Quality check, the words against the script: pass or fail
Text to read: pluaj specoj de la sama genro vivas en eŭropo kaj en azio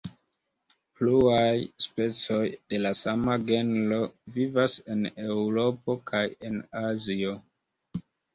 pass